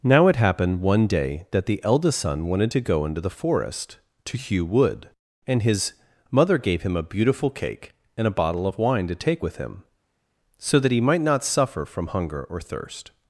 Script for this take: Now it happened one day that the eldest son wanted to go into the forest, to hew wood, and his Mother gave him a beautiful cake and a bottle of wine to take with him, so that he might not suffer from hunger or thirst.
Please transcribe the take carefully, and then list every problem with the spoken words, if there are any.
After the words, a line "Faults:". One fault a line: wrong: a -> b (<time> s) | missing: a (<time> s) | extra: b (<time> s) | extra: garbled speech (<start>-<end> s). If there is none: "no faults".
Now it happened one day that the eldest son wanted to go into the forest, to hew wood, and his Mother gave him a beautiful cake and a bottle of wine to take with him, so that he might not suffer from hunger or thirst.
Faults:
no faults